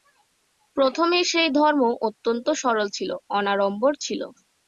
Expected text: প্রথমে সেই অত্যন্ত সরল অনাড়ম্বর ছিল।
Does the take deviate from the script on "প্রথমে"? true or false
false